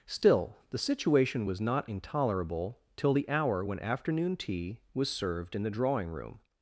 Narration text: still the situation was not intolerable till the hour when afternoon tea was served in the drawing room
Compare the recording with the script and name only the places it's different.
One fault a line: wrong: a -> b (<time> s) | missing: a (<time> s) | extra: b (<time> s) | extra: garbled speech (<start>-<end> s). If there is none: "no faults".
no faults